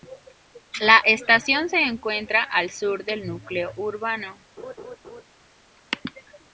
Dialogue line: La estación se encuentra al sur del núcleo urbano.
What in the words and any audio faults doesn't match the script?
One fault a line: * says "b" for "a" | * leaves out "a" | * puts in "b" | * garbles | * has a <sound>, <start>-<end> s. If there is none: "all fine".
* has a laugh, 4.6-5.2 s